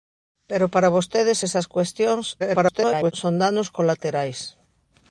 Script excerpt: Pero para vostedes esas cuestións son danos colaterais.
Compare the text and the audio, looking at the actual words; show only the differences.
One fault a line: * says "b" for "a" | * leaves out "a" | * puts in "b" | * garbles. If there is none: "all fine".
* garbles